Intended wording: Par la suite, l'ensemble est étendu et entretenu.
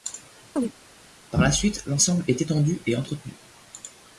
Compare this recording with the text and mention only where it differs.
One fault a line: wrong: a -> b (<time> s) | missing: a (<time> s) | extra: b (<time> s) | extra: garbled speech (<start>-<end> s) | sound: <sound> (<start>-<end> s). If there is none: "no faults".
sound: chirp (0.6-0.7 s)